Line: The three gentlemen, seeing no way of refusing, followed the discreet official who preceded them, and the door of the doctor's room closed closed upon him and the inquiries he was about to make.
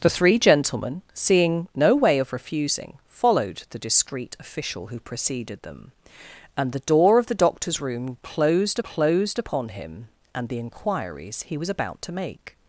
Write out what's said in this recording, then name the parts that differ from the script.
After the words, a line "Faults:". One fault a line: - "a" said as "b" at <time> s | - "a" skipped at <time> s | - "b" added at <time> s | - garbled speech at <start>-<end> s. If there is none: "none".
The three gentlemen, seeing no way of refusing, followed the discreet official who preceded them, and the door of the doctor's room closed closed upon him and the inquiries he was about to make.
Faults:
none